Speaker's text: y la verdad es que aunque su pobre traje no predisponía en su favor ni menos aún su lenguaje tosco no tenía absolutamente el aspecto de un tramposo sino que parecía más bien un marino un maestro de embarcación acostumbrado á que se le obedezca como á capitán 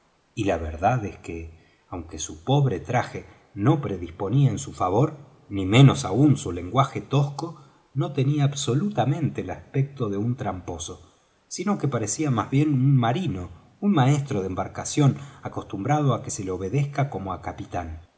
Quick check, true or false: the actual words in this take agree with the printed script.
true